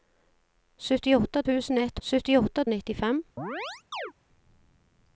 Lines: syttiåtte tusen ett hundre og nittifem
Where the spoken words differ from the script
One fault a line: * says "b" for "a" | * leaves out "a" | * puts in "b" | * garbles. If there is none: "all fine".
* says "syttiåtte" for "hundre"